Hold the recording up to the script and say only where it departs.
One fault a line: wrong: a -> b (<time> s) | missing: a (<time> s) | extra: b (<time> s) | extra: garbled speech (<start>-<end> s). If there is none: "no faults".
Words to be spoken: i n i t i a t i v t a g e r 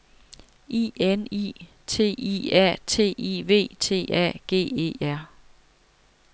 no faults